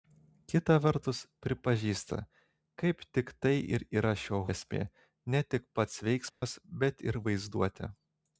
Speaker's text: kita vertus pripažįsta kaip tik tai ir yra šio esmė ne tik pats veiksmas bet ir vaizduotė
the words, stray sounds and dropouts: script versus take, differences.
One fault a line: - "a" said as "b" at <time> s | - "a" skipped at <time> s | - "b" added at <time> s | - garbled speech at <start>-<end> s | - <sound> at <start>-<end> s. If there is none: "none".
- dropout at 6.3-6.4 s